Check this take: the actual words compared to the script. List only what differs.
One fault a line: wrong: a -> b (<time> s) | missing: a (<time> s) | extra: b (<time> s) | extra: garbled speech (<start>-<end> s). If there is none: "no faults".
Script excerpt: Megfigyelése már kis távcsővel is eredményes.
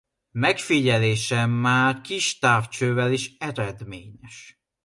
no faults